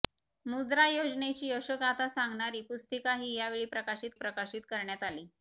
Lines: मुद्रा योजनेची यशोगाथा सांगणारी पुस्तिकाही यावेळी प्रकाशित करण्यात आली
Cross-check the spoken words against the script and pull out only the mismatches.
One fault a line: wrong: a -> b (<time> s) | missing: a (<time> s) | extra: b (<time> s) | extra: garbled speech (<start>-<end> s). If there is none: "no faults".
extra: प्रकाशित (4.1 s)